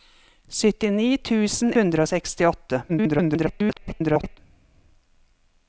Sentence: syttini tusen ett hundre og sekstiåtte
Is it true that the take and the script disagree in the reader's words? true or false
true